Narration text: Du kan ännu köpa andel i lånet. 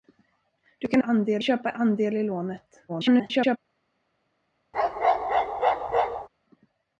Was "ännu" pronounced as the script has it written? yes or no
no